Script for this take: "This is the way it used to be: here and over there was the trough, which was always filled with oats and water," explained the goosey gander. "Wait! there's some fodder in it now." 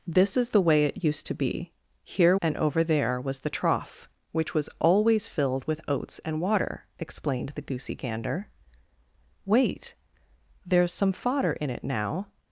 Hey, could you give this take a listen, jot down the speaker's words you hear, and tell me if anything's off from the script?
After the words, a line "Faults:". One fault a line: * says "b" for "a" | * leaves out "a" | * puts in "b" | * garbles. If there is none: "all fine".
"This is the way it used to be: here and over there was the trough, which was always filled with oats and water," explained the goosey gander. "Wait! there's some fodder in it now."
Faults:
all fine